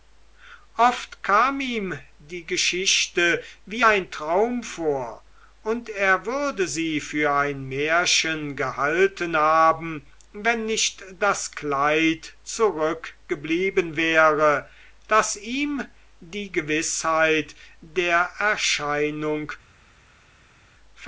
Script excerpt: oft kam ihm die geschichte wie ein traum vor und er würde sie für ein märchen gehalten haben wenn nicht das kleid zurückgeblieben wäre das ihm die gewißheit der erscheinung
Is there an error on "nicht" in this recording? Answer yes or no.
no